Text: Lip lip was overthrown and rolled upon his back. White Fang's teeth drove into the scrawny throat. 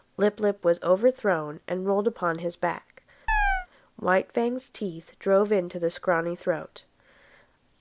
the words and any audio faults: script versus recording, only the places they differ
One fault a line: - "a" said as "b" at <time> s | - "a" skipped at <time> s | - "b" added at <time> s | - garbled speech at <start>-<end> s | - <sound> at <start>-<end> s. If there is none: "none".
- chirp at 3.3-3.7 s